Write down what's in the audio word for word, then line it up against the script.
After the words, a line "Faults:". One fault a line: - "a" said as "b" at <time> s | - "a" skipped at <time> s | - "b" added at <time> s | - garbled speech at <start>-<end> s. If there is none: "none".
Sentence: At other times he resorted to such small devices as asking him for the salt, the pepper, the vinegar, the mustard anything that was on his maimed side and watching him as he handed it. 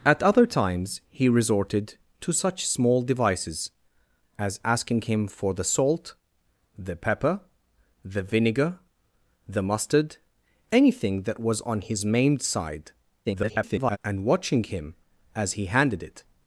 At other times he resorted to such small devices as asking him for the salt, the pepper, the vinegar, the mustard anything that was on his maimed side [garbled] and watching him as he handed it.
Faults:
- garbled speech at 13.2-14.0 s